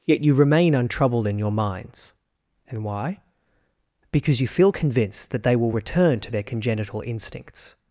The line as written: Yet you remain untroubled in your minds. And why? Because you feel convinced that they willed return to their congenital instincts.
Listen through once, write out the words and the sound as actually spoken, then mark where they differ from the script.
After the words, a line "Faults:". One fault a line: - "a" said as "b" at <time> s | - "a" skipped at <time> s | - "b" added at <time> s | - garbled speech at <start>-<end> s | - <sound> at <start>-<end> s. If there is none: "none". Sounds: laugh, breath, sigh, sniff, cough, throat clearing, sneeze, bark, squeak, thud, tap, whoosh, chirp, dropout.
Yet you remain untroubled in your minds. And why? Because you feel convinced that they will return to their congenital instincts.
Faults:
- "willed" said as "will" at 5.5 s